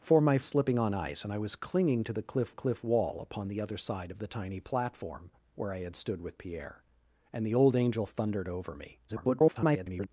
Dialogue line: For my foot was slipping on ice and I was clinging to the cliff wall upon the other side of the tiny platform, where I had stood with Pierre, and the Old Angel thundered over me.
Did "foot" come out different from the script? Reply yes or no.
yes